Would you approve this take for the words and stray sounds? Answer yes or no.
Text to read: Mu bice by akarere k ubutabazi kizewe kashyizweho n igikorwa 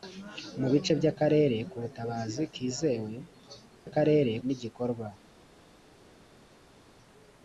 no